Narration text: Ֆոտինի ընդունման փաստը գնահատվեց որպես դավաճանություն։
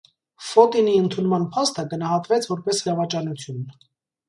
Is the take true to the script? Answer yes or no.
yes